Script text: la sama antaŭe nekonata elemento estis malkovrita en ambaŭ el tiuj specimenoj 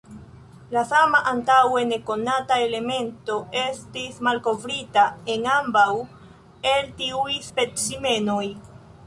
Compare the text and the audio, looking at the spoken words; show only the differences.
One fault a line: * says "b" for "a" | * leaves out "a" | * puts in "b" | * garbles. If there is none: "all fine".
all fine